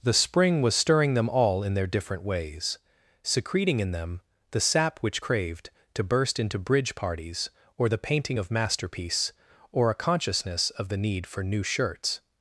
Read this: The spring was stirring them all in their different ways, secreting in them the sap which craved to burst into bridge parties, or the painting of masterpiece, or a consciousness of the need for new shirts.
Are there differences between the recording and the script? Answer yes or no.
no